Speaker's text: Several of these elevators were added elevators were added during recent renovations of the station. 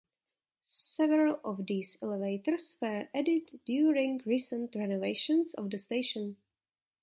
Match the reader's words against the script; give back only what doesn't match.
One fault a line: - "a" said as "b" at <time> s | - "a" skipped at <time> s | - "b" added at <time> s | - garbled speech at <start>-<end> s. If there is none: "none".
- "elevators were added" skipped at 3.6 s